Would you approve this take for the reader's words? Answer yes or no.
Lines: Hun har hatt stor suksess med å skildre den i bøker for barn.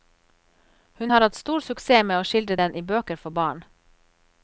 yes